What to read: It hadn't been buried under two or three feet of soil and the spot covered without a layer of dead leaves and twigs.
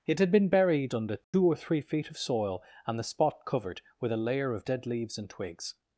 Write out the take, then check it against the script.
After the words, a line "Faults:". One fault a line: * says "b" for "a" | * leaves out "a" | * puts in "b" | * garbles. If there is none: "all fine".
It had been buried under two or three feet of soil and the spot covered with a layer of dead leaves and twigs.
Faults:
* says "had" for "hadn't"
* says "with" for "without"